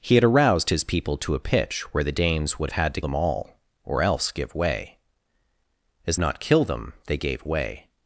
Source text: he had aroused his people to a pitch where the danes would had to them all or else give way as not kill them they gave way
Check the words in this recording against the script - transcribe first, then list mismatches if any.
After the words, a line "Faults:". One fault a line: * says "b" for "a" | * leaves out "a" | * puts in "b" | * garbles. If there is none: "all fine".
he had aroused his people to a pitch where the danes would had to them all or else give way as not kill them they gave way
Faults:
all fine